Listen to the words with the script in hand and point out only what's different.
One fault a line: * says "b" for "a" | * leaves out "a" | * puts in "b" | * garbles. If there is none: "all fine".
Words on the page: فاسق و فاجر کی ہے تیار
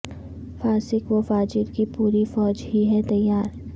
* puts in "پوری فوج ہی"